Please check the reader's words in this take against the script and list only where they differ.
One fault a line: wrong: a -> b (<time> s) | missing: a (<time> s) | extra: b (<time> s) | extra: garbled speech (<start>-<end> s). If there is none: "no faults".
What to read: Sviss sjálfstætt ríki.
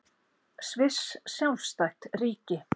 no faults